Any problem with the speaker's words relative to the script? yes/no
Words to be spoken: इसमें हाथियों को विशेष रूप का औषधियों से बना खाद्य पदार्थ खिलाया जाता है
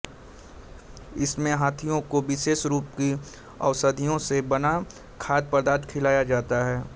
yes